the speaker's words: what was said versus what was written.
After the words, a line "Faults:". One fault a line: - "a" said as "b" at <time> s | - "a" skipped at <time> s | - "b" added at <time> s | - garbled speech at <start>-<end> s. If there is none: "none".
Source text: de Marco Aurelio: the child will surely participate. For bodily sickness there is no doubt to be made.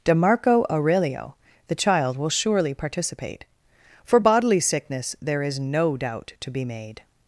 de Marco Aurelio: the child will surely participate. For bodily sickness there is no doubt to be made.
Faults:
none